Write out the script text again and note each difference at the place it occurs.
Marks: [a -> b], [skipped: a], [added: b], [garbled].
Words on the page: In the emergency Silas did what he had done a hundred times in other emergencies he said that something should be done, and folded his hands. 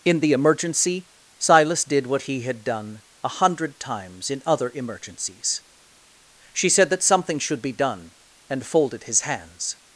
In the emergency Silas did what he had done a hundred times in other emergencies [he -> she] said that something should be done, and folded his hands.